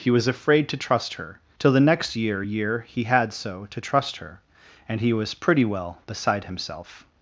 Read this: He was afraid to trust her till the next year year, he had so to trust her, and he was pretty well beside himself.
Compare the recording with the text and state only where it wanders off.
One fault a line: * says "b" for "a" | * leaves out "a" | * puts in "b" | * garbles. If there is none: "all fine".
all fine